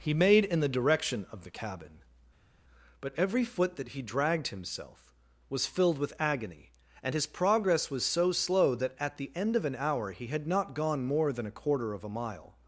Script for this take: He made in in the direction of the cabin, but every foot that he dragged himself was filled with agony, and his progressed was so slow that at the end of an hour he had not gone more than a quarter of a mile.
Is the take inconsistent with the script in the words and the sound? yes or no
yes